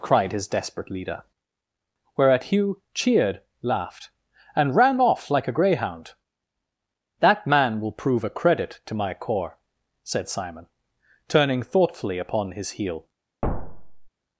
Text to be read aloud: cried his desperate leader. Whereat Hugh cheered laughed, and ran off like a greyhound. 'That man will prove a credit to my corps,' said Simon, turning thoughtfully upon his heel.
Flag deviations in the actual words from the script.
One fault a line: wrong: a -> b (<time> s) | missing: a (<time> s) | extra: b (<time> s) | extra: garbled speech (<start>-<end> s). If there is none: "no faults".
no faults